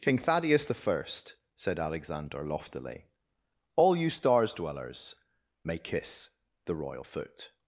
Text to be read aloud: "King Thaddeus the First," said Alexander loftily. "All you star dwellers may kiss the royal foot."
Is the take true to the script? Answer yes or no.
no